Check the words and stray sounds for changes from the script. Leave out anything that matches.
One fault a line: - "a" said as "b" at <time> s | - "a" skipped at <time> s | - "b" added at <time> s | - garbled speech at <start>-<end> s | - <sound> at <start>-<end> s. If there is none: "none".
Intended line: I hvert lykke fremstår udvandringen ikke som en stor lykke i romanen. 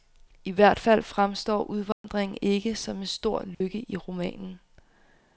- "lykke" said as "fald" at 0.8 s
- dropout at 1.9-2.0 s
- dropout at 3.5-3.6 s